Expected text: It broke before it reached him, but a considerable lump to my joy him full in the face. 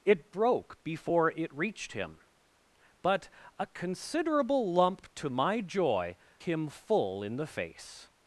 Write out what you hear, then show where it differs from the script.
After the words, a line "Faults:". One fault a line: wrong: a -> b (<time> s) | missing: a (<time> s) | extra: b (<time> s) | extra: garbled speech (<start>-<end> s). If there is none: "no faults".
It broke before it reached him, but a considerable lump to my joy him full in the face.
Faults:
no faults